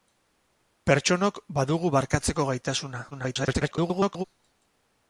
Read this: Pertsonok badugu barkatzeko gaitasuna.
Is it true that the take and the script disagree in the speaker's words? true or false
true